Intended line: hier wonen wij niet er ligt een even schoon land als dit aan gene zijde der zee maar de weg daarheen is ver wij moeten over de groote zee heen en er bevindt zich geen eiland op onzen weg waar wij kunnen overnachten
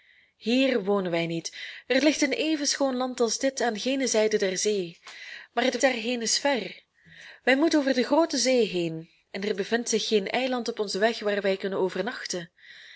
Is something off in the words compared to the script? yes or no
yes